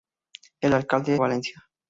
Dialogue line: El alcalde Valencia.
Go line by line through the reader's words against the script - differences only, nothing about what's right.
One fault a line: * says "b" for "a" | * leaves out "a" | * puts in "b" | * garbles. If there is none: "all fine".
all fine